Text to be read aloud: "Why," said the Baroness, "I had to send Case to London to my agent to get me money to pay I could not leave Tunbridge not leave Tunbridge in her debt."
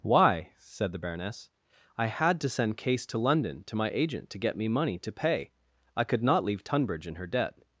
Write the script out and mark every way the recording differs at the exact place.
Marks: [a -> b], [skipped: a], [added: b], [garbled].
"Why," said the Baroness, "I had to send Case to London to my agent to get me money to pay I could not leave Tunbridge [skipped: not leave Tunbridge] in her debt."